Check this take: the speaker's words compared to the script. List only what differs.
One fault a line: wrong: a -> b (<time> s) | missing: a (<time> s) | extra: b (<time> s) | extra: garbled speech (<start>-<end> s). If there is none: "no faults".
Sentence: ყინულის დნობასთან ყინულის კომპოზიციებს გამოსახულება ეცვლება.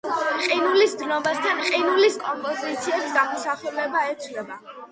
no faults